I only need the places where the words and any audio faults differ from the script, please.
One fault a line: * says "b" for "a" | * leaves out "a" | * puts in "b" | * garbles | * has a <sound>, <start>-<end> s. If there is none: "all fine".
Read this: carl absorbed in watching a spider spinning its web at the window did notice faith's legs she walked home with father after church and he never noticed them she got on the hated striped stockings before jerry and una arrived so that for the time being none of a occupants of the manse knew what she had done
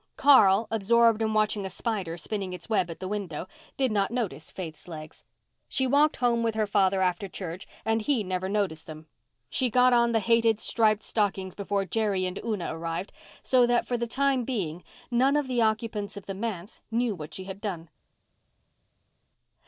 * puts in "not"
* puts in "her"
* says "the" for "a"